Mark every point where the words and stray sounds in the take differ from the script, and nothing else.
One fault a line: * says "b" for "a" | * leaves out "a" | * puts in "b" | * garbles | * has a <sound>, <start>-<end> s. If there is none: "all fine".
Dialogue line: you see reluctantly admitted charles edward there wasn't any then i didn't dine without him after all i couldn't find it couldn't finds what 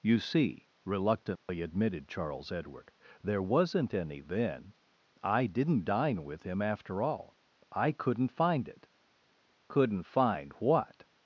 * has a dropout, 1.4-1.5 s
* says "with" for "without"
* says "find" for "finds"